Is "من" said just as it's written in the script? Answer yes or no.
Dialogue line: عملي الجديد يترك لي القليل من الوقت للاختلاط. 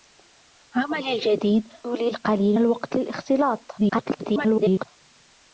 no